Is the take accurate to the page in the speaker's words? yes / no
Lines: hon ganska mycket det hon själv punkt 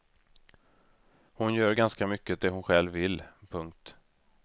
no